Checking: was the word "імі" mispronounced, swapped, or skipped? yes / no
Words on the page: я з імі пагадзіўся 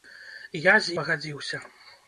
yes